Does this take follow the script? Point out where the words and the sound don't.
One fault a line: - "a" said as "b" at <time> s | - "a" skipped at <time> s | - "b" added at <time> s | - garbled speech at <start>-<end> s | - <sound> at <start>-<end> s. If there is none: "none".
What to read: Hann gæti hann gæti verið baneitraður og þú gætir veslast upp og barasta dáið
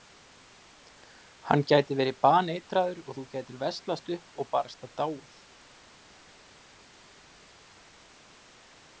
- "hann gæti" skipped at 2.0 s